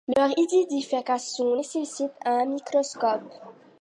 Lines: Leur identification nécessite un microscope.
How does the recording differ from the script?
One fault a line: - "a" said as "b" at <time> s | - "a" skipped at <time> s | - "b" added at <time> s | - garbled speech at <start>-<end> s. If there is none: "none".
none